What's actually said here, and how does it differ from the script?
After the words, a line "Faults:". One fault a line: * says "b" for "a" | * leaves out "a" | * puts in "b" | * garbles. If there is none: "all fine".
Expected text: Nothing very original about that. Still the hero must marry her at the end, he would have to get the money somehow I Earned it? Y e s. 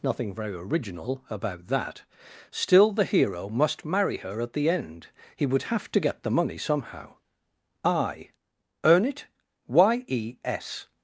Nothing very original about that. Still the hero must marry her at the end, he would have to get the money somehow I Earn it? Y e s.
Faults:
* says "Earn" for "Earned"